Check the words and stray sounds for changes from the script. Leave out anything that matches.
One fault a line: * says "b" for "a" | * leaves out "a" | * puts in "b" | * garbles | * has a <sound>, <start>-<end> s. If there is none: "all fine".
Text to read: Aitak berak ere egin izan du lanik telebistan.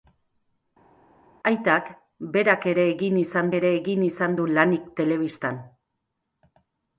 * puts in "ere egin izan"